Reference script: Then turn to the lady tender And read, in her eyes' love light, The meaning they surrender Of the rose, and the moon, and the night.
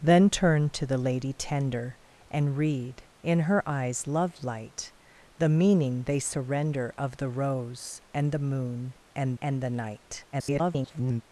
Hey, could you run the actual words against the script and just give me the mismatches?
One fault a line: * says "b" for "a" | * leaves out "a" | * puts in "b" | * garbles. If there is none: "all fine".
* puts in "and"
* garbles